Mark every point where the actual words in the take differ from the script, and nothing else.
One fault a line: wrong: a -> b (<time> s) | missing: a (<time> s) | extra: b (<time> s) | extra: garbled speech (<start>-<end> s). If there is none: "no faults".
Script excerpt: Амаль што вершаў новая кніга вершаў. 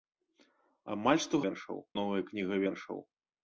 no faults